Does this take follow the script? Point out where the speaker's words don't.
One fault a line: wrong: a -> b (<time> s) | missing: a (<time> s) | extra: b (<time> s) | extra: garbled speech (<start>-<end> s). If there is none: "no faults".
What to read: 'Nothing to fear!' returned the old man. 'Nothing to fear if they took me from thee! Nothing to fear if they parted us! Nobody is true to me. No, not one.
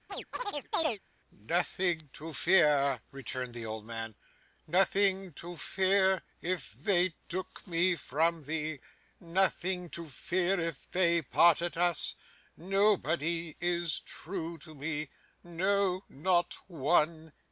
no faults